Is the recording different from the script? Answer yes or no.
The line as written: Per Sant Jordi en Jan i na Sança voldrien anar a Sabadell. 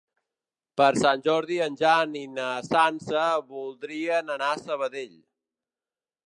no